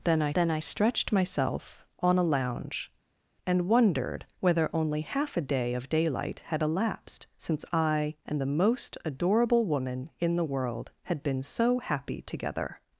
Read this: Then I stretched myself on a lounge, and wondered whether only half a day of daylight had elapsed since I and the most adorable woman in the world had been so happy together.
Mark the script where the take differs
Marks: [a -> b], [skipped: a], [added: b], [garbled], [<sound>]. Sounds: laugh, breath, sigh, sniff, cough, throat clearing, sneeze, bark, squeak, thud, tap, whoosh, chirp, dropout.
Then I [added: then I] stretched myself on a lounge, and wondered whether only half a day of daylight had elapsed since I and the most adorable woman in the world had been so happy together.